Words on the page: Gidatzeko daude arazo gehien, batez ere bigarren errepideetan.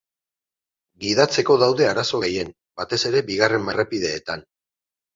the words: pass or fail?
pass